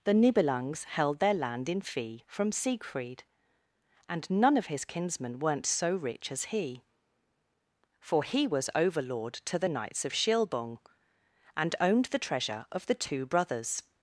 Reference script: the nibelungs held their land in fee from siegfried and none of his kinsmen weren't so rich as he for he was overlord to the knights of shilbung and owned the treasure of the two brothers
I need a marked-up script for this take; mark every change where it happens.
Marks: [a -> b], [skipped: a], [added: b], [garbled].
the nibelungs held their land in fee from siegfried and none of his kinsmen weren't so rich as he for he was overlord to the knights of shilbung and owned the treasure of the two brothers